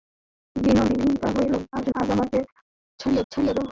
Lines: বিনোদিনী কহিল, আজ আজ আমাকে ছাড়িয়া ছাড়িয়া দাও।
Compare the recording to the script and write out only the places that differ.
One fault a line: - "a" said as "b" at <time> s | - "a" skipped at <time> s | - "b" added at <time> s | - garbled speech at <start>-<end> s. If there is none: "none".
none